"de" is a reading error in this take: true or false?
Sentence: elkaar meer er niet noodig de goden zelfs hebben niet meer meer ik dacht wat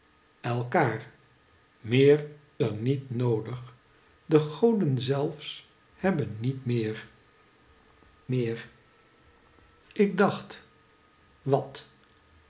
false